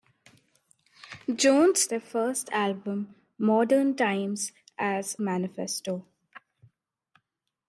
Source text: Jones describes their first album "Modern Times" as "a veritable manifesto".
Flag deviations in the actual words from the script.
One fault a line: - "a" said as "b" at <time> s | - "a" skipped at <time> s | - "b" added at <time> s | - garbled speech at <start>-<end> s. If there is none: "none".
- "describes" skipped at 1.9 s
- "a veritable" skipped at 5.1 s